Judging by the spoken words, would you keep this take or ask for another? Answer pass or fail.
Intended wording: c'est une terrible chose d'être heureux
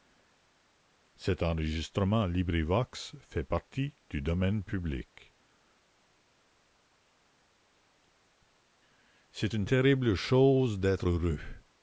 pass